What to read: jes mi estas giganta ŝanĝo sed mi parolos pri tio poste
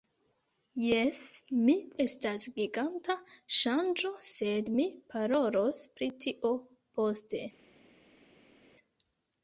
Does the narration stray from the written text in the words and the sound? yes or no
no